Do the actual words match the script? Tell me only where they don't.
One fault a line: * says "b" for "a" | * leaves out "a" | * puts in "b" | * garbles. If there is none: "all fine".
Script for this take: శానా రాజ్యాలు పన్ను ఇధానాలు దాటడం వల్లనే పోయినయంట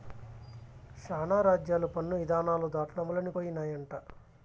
all fine